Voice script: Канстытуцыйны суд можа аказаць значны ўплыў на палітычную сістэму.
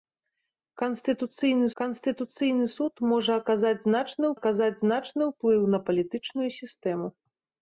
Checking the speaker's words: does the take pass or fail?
fail